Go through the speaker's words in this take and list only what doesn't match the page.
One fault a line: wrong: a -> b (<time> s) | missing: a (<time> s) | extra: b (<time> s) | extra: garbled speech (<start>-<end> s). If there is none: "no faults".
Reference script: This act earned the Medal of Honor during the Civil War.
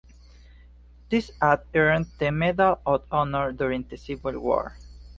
no faults